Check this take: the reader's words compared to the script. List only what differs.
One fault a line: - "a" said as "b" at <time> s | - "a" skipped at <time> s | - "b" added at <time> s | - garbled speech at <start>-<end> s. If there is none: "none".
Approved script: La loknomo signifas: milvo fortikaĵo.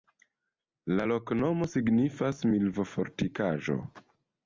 none